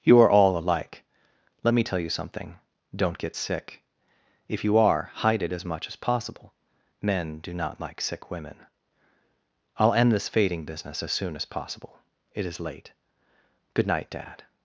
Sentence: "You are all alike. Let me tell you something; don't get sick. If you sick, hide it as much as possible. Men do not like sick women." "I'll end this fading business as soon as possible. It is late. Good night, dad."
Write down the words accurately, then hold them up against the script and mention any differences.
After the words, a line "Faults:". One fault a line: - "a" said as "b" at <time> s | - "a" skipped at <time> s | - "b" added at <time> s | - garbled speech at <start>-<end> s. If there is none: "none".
"You are all alike. Let me tell you something; don't get sick. If you are, hide it as much as possible. Men do not like sick women." "I'll end this fading business as soon as possible. It is late. Good night, dad."
Faults:
- "sick" said as "are" at 4.8 s